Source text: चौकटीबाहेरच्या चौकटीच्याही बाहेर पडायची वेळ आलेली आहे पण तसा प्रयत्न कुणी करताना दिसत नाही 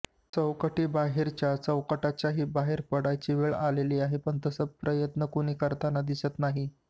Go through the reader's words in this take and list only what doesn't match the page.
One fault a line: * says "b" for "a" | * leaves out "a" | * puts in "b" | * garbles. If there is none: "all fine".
all fine